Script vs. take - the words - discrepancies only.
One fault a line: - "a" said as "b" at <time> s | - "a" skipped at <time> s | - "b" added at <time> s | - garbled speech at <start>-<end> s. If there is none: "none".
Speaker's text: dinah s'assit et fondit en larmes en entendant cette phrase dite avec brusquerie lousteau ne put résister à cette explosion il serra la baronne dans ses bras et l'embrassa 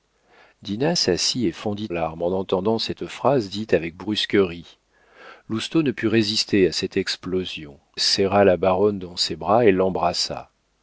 - "en" skipped at 1.9 s
- "il" skipped at 7.8 s